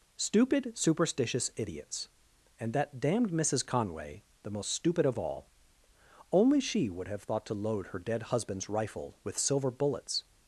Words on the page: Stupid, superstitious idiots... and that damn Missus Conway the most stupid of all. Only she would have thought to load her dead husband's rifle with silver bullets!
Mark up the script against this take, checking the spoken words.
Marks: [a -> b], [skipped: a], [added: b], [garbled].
Stupid, superstitious idiots... and that [damn -> damned] Missus Conway the most stupid of all. Only she would have thought to load her dead husband's rifle with silver bullets!